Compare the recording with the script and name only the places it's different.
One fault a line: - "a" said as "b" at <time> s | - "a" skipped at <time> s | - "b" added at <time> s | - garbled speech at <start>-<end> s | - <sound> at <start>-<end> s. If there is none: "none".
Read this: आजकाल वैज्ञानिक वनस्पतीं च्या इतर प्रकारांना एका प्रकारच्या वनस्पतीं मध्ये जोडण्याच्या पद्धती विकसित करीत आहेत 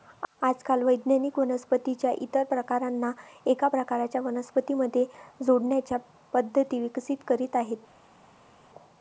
none